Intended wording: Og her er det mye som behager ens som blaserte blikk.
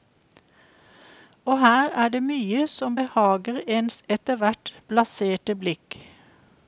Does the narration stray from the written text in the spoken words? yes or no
yes